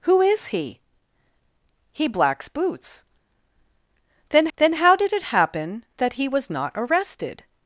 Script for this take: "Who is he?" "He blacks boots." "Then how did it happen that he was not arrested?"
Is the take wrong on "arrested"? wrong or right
right